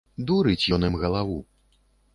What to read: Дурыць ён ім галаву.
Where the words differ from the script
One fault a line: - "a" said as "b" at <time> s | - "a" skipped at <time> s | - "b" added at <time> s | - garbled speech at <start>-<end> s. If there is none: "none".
none